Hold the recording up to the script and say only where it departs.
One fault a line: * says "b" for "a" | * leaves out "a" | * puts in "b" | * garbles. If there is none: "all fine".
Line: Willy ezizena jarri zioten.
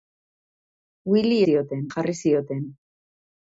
* says "zioten" for "ezizena"